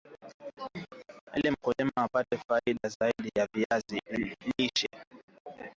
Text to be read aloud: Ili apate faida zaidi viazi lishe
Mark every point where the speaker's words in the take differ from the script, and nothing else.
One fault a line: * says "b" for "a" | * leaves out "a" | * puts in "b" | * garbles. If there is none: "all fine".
* puts in "mkulima"
* puts in "ya"